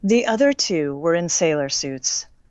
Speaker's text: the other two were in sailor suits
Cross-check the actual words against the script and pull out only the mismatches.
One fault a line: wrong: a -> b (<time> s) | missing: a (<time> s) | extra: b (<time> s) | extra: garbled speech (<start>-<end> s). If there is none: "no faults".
no faults